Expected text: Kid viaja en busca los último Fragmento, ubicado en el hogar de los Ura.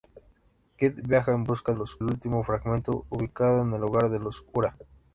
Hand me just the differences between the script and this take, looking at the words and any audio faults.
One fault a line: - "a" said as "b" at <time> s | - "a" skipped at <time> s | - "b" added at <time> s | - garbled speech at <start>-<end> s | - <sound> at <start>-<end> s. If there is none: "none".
none